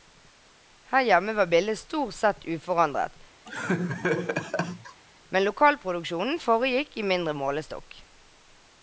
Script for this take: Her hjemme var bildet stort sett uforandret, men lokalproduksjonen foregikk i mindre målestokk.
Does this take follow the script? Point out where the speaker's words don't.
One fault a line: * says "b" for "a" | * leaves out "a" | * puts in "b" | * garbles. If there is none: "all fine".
all fine